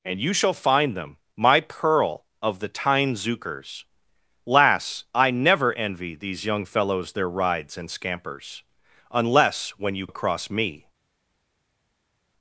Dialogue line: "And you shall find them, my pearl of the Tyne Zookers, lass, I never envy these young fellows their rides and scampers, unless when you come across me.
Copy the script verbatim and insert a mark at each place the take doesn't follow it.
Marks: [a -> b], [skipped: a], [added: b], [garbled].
"And you shall find them, my pearl of the Tyne Zookers, lass, I never envy these young fellows their rides and scampers, unless when you [skipped: come] across me.